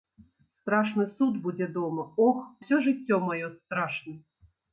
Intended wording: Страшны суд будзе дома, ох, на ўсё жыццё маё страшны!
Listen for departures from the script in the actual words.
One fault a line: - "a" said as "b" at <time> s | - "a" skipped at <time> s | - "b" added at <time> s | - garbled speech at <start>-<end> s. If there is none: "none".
- "на" skipped at 2.4 s